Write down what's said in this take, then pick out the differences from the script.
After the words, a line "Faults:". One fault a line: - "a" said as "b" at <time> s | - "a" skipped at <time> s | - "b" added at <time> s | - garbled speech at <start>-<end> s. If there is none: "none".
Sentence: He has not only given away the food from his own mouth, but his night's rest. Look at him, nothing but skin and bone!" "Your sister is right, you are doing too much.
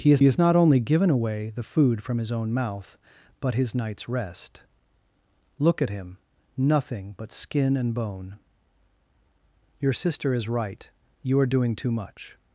He has has not only given away the food from his own mouth, but his night's rest. Look at him, nothing but skin and bone!" "Your sister is right, you are doing too much.
Faults:
- "has" added at 0.2 s